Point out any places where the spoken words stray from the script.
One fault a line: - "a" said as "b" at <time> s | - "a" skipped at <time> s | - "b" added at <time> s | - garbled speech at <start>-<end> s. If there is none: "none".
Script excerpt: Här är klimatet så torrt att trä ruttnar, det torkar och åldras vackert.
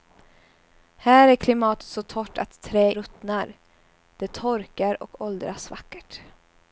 none